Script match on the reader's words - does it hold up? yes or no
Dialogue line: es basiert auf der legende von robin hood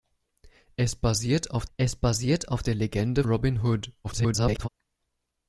no